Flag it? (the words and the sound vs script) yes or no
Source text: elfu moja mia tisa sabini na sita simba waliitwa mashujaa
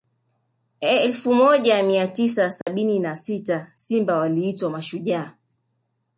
yes